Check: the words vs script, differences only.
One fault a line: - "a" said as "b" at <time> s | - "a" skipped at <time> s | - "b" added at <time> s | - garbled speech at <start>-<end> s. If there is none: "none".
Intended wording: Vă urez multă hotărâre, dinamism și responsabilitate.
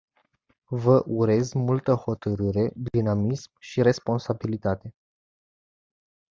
none